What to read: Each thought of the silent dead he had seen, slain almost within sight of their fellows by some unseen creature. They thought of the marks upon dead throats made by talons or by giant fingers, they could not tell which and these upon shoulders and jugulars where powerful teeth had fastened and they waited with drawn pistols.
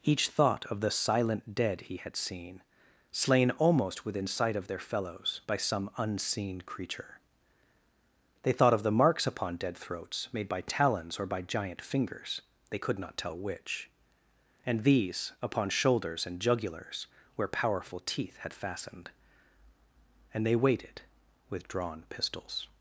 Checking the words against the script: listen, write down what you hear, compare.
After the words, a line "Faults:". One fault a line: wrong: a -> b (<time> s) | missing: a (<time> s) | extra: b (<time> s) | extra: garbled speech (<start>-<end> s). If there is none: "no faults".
Each thought of the silent dead he had seen, slain almost within sight of their fellows by some unseen creature. They thought of the marks upon dead throats made by talons or by giant fingers, they could not tell which and these upon shoulders and jugulars where powerful teeth had fastened and they waited with drawn pistols.
Faults:
no faults